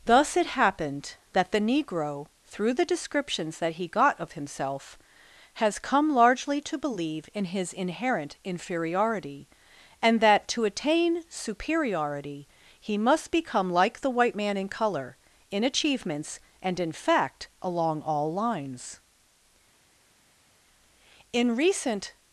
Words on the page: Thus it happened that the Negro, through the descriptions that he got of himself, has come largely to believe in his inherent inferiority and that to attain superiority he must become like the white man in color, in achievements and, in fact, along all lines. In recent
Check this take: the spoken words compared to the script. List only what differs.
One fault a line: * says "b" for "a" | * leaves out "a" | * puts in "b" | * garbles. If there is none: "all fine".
all fine